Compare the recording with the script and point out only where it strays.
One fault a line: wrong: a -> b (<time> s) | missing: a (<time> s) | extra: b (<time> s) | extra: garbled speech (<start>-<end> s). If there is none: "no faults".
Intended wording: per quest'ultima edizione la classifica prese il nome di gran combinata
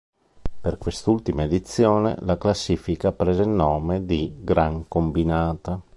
no faults